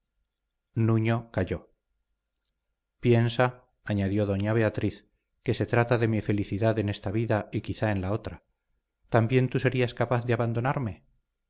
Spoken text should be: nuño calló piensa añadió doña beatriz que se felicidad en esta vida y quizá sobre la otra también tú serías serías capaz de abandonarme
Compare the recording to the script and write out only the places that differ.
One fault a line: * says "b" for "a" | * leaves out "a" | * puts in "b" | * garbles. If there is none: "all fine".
* puts in "trata de mi"
* says "en" for "sobre"
* leaves out "serías"